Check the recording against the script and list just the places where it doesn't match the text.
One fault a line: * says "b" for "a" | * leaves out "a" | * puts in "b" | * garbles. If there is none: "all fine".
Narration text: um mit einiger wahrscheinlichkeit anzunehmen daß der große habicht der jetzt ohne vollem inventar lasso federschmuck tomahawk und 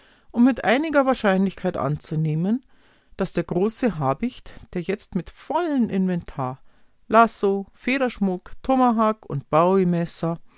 * says "mit" for "ohne"